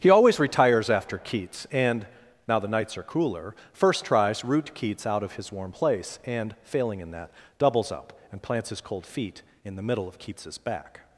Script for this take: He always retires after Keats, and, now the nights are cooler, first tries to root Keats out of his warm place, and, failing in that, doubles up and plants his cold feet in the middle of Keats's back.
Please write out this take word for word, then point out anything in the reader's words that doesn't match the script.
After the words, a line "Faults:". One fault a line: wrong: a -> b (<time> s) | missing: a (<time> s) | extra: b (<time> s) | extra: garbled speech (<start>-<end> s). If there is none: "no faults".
He always retires after Keats, and, now the nights are cooler, first tries root Keats out of his warm place, and, failing in that, doubles up and plants his cold feet in the middle of Keats's back.
Faults:
missing: to (4.4 s)